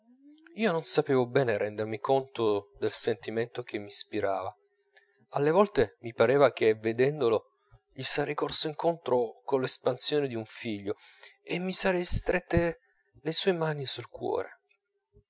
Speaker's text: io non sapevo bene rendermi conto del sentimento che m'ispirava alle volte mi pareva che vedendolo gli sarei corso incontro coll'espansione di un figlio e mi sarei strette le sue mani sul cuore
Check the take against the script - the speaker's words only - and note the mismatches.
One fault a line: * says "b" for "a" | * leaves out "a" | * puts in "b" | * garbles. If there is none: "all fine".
all fine